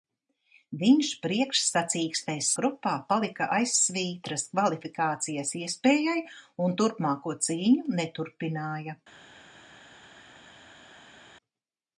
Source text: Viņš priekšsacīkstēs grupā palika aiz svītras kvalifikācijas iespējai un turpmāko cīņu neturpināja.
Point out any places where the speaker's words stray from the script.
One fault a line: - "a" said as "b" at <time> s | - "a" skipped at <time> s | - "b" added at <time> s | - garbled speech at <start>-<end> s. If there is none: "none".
none